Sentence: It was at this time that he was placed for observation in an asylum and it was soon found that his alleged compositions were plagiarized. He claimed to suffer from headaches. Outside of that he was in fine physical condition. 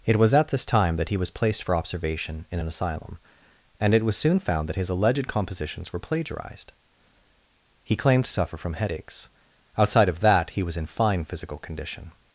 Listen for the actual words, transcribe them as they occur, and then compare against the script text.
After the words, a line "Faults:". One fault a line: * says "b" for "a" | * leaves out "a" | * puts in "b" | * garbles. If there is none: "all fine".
It was at this time that he was placed for observation in an asylum and it was soon found that his alleged compositions were plagiarized. He claimed to suffer from headaches. Outside of that he was in fine physical condition.
Faults:
all fine